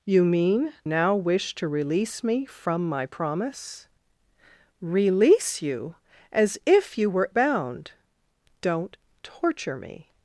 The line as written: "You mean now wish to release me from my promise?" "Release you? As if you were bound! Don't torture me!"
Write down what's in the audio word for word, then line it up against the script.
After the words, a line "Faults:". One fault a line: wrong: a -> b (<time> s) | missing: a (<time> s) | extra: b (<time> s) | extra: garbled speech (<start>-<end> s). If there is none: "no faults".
"You mean now wish to release me from my promise?" "Release you? As if you were bound! Don't torture me!"
Faults:
no faults